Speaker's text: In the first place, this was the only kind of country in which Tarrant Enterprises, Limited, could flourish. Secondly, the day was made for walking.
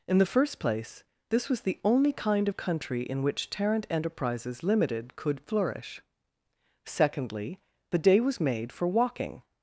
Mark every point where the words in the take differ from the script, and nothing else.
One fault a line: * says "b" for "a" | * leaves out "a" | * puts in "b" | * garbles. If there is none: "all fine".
all fine